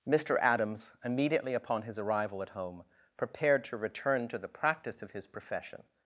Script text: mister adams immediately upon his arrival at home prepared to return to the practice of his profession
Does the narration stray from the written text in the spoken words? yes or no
no